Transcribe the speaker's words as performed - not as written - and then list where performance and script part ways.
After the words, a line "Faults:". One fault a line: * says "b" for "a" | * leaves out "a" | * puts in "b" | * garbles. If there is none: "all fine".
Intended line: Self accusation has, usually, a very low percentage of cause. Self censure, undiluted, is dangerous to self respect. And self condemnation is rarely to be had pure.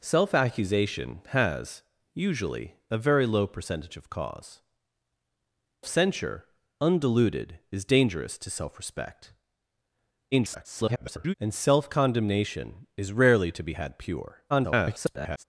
Self accusation has, usually, a very low percentage of cause. Censure, undiluted, is dangerous to self respect. [garbled] And self condemnation is rarely to be had pure. [garbled]
Faults:
* leaves out "Self"
* garbles
* garbles